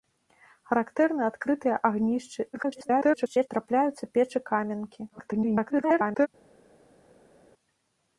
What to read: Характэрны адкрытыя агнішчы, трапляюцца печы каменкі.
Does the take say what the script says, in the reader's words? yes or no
no